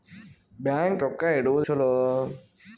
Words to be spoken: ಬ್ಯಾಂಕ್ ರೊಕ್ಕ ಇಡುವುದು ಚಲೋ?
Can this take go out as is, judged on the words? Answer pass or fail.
pass